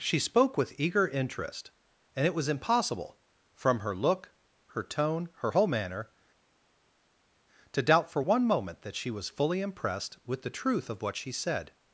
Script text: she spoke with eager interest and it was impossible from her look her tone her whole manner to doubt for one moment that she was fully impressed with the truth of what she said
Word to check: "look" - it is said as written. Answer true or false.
true